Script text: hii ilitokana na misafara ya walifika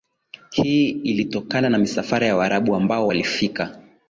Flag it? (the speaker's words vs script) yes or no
yes